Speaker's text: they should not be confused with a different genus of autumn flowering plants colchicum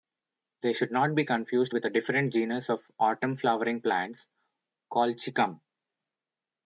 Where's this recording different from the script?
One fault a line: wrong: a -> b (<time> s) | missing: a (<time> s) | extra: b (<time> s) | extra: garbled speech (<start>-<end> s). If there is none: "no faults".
no faults